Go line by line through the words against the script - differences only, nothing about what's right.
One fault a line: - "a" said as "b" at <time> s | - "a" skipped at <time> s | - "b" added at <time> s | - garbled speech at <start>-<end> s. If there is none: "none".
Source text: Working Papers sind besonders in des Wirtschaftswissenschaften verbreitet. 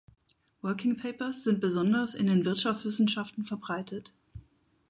- "des" said as "den" at 2.2 s